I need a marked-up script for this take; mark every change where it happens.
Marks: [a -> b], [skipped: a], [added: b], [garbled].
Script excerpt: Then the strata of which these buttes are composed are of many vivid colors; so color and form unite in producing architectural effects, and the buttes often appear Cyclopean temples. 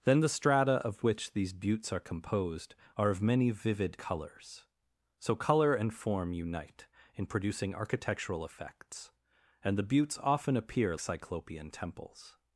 Then the strata of which these buttes are composed are of many vivid colors; so color and form unite in producing architectural effects, and the buttes often appear Cyclopean temples.